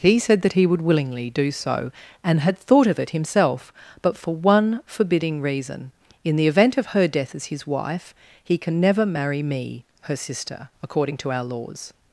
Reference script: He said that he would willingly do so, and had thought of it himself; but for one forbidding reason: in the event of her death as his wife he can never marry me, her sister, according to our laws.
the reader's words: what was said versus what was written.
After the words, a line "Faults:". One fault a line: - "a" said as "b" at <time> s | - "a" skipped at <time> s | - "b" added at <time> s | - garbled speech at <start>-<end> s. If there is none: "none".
He said that he would willingly do so, and had thought of it himself; but for one forbidding reason: in the event of her death as his wife he can never marry me, her sister, according to our laws.
Faults:
none